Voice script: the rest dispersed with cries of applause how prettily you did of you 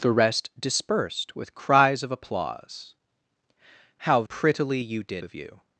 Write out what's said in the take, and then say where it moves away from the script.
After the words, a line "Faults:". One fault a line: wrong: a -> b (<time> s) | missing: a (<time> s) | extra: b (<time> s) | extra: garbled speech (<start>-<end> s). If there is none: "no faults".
the rest dispersed with cries of applause how prettily you did of you
Faults:
no faults